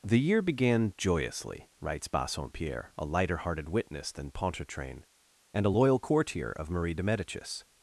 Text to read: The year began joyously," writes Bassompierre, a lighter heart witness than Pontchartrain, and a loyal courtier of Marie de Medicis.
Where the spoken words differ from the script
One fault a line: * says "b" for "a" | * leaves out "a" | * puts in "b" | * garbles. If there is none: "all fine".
* says "hearted" for "heart"